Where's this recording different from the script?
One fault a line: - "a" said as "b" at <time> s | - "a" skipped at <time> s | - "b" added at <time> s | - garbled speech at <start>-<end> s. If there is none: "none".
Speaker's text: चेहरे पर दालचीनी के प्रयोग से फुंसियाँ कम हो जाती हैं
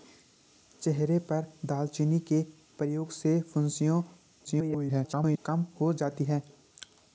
- garbled speech at 4.4-5.4 s